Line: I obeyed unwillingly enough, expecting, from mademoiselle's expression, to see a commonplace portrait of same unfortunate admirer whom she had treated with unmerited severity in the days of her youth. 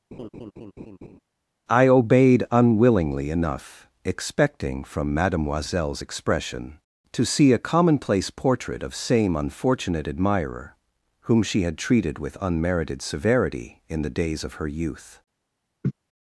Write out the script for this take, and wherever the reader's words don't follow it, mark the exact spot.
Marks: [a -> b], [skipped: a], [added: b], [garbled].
I obeyed unwillingly enough, expecting, from mademoiselle's expression, to see a commonplace portrait of same unfortunate admirer whom she had treated with unmerited severity in the days of her youth.